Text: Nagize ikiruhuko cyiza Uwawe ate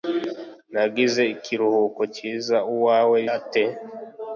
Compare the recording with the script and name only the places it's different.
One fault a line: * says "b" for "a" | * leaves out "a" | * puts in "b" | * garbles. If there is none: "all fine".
all fine